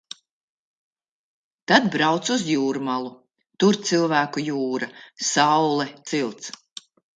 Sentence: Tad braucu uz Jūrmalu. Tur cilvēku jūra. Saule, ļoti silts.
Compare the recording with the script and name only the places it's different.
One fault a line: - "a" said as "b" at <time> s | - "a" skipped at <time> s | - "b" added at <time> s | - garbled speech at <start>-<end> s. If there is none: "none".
- "ļoti" skipped at 5.8 s